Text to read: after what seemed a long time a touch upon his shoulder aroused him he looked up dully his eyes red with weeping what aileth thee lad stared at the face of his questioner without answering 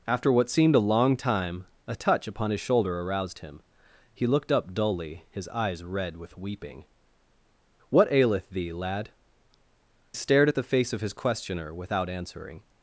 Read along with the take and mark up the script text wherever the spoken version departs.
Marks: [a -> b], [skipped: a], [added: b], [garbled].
after what seemed a long time a touch upon his shoulder aroused him he looked up dully his eyes red with weeping what aileth thee lad stared at the face of his questioner without answering